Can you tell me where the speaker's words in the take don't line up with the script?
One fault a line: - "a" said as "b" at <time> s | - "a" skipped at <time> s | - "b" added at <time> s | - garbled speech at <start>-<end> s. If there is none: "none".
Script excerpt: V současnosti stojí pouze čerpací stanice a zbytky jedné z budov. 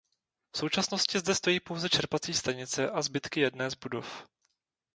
- "zde" added at 1.2 s